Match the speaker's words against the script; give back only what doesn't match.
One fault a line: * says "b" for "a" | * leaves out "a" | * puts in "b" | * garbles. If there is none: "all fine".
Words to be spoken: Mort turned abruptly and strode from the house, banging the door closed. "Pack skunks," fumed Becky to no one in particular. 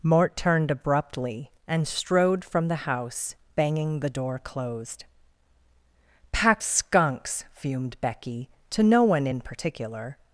all fine